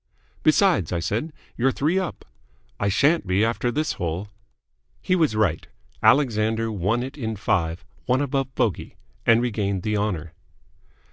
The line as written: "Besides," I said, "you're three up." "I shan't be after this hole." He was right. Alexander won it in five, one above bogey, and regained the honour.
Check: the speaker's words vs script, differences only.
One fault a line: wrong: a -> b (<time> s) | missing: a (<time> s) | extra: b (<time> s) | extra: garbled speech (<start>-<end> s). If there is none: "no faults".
no faults